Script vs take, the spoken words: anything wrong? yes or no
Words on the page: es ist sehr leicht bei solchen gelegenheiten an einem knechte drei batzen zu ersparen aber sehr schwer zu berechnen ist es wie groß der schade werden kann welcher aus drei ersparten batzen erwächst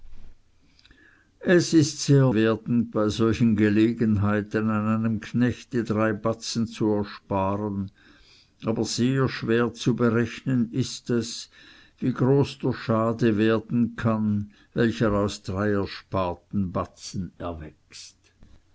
yes